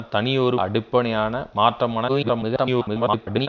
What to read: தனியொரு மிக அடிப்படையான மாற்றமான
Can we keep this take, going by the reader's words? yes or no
no